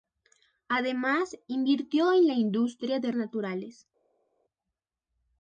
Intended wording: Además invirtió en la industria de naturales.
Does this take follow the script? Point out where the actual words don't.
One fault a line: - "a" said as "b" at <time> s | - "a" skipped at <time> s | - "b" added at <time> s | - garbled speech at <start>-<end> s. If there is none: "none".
none